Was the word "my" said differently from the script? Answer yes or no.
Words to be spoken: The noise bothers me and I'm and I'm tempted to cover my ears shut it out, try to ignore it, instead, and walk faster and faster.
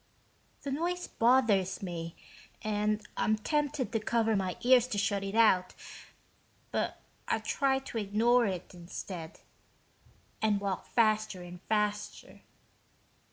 no